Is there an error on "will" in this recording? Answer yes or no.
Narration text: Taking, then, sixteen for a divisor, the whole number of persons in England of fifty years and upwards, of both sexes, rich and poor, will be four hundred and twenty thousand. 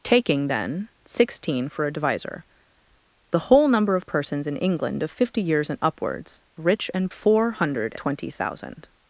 yes